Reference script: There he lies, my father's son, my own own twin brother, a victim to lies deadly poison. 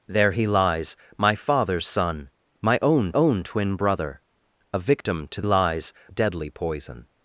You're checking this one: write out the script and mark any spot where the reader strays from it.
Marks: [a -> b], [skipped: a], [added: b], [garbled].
There he lies, my father's son, my own own twin brother, a victim to lies deadly poison.